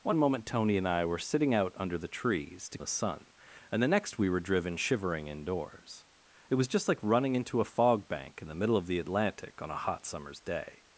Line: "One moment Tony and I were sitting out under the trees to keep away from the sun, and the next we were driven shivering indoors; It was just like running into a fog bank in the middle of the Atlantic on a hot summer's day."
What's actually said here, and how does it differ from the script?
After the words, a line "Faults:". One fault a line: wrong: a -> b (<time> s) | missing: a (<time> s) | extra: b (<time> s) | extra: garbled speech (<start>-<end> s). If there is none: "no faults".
"One moment Tony and I were sitting out under the trees to the sun, and the next we were driven shivering indoors; It was just like running into a fog bank in the middle of the Atlantic on a hot summer's day."
Faults:
missing: keep away from (2.8 s)